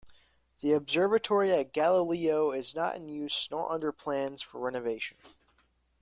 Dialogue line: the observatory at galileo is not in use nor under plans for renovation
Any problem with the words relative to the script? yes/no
no